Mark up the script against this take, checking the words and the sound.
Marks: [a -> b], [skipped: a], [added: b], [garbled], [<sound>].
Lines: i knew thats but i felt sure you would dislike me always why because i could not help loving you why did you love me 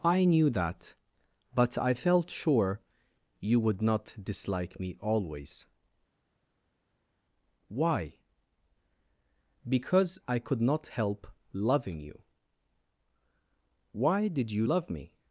i knew [thats -> that] but i felt sure you would [added: not] dislike me always why because i could not help loving you why did you love me